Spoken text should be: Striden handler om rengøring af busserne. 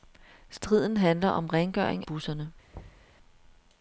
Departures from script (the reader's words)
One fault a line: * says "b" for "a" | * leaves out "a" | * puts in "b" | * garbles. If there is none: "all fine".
* leaves out "af"